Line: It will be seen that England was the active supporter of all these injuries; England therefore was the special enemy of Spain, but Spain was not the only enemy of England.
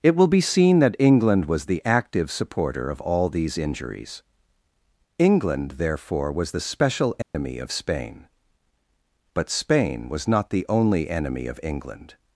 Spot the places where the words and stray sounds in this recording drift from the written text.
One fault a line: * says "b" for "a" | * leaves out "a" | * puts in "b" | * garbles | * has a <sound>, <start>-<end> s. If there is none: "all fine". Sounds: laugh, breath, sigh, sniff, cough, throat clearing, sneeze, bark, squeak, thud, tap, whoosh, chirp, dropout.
* has a dropout, 7.2-7.3 s